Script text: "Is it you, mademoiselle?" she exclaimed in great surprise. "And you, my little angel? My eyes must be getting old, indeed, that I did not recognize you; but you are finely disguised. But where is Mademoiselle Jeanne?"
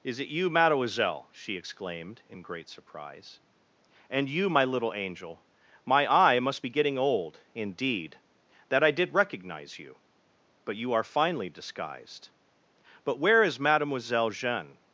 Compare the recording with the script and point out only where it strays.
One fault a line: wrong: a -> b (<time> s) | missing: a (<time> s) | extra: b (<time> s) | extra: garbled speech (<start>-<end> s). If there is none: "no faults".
wrong: eyes -> eye (6.1 s)
missing: not (9.1 s)